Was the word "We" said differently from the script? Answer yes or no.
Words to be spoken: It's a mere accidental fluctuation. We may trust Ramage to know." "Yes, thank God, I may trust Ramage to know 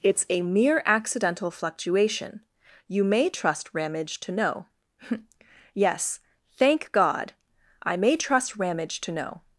yes